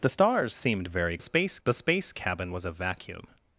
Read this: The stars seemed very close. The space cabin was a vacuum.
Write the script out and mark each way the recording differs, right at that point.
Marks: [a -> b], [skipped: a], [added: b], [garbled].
The stars seemed very [close. -> space] The space cabin was a vacuum.